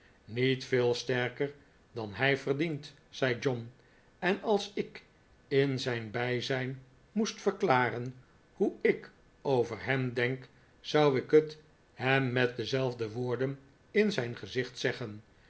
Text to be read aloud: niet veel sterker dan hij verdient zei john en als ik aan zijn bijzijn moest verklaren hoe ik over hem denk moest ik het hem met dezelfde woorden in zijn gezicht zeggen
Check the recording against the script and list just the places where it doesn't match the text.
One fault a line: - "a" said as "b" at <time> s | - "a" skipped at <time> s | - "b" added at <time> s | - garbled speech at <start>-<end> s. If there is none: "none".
- "aan" said as "in" at 5.5 s
- "moest" said as "zou" at 10.8 s